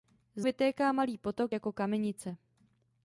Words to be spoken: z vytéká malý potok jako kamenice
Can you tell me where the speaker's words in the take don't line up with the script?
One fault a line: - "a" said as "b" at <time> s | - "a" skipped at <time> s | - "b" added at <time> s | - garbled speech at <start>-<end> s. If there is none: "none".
none